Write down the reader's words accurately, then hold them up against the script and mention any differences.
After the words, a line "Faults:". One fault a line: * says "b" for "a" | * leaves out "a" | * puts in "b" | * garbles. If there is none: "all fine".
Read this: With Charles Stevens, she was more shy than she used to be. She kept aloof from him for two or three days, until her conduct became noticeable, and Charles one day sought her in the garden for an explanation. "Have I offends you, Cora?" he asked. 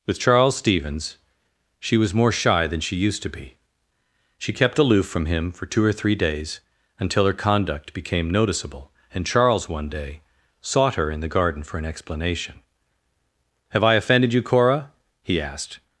With Charles Stevens, she was more shy than she used to be. She kept aloof from him for two or three days, until her conduct became noticeable, and Charles one day sought her in the garden for an explanation. "Have I offended you, Cora?" he asked.
Faults:
* says "offended" for "offends"